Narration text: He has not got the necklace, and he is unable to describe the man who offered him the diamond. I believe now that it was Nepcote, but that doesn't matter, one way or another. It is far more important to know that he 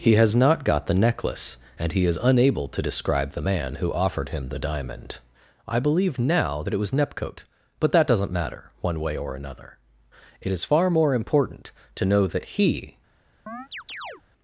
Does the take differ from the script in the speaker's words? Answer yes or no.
no